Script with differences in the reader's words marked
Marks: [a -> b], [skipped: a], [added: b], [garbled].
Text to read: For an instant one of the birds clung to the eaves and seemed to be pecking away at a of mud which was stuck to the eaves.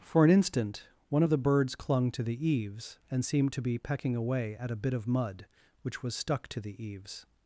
For an instant one of the birds clung to the eaves and seemed to be pecking away at a [added: bit] of mud which was stuck to the eaves.